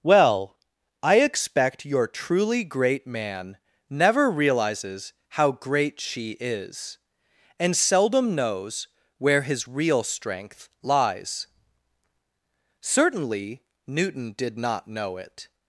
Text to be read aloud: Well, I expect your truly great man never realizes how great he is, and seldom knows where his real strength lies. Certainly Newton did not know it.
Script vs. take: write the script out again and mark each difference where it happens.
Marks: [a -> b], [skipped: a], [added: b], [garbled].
Well, I expect your truly great man never realizes how great [he -> she] is, and seldom knows where his real strength lies. Certainly Newton did not know it.